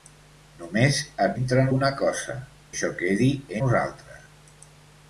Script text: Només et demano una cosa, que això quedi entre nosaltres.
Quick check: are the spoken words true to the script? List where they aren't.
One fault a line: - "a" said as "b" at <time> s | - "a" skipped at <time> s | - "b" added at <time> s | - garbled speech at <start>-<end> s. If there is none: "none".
- "demano" said as "entre" at 1.4 s
- "que" skipped at 2.4 s
- "entre" skipped at 3.3 s